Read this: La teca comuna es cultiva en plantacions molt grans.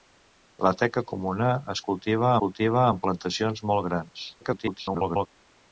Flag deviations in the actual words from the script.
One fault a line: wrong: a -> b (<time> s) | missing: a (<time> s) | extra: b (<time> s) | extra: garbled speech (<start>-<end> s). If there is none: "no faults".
extra: cultiva (2.4 s)
extra: garbled speech (4.4-5.3 s)